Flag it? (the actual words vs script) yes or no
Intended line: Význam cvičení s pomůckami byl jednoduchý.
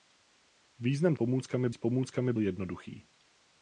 yes